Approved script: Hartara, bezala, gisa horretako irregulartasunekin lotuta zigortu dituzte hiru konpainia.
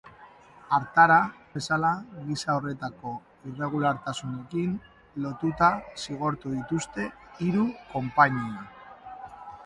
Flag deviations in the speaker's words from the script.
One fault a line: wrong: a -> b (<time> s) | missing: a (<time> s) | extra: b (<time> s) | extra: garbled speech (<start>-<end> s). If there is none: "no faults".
no faults